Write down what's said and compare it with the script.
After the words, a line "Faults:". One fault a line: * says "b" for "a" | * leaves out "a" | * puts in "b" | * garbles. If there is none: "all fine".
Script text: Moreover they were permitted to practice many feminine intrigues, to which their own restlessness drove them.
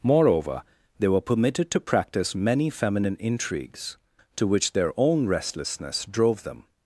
Moreover they were permitted to practice many feminine intrigues, to which their own restlessness drove them.
Faults:
all fine